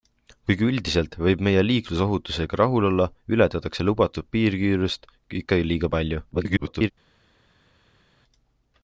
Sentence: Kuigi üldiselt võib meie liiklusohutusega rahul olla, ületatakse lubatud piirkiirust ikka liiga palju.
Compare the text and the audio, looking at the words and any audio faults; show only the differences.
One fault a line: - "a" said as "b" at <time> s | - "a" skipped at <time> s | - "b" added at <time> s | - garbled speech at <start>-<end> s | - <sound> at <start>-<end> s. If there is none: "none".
- garbled speech at 6.3-6.9 s